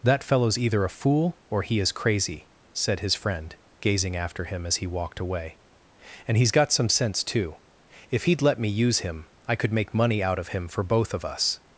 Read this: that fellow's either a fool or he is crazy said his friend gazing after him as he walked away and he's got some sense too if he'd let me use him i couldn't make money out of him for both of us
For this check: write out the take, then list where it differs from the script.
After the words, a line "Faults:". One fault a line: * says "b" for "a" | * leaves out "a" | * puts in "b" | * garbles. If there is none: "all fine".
that fellow's either a fool or he is crazy said his friend gazing after him as he walked away and he's got some sense too if he'd let me use him i could make money out of him for both of us
Faults:
* says "could" for "couldn't"